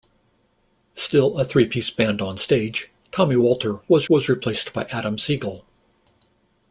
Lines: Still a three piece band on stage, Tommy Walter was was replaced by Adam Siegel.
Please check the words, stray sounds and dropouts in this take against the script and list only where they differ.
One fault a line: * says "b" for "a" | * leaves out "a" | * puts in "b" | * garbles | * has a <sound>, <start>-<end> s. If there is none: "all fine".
all fine